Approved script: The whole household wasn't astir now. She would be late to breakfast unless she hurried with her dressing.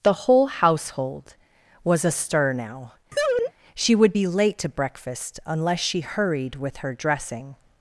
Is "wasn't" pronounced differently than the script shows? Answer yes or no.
yes